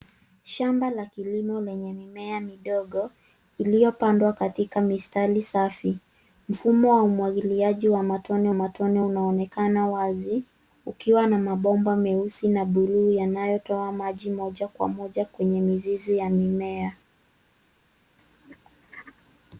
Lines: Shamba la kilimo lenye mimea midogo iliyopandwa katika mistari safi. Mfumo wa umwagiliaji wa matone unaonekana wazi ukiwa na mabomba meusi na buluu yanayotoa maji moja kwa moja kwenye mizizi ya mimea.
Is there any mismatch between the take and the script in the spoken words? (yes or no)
yes